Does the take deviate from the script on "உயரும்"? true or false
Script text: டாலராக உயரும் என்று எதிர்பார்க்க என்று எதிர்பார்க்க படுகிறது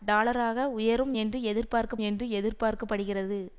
false